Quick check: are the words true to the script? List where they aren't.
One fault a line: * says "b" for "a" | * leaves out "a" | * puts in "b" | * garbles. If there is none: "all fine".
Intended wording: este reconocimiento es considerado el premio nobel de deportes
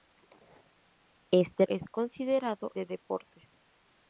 * leaves out "reconocimiento"
* leaves out "el premio nobel"